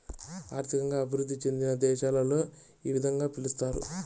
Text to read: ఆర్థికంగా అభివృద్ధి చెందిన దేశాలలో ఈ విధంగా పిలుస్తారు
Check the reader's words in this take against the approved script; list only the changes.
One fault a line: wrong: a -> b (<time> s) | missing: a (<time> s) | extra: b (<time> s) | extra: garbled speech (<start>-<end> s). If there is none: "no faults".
no faults